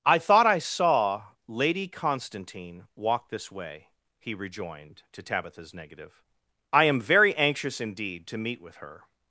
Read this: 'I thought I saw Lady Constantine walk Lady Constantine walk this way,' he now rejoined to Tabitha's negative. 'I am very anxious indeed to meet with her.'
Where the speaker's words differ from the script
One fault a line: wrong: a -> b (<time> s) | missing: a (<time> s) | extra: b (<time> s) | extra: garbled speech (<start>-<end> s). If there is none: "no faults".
missing: Lady Constantine walk (3.3 s)
missing: now (4.3 s)